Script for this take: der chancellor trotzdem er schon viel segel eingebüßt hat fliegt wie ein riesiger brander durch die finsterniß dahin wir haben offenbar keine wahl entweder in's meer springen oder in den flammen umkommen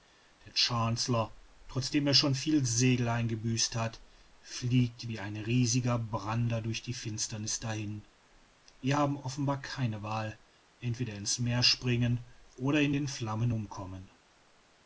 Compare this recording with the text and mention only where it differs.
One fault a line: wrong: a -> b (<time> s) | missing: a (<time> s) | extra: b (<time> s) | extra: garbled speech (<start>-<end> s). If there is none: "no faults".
no faults